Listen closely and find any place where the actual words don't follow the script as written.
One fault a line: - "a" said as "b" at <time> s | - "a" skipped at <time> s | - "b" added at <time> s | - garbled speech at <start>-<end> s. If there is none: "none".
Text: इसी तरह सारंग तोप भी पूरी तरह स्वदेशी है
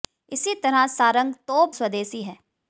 - "भी पूरी तरह" skipped at 1.8 s